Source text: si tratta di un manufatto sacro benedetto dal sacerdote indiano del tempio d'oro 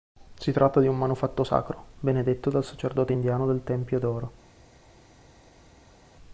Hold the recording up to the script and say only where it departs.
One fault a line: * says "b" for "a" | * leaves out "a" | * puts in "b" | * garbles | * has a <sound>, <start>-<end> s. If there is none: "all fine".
all fine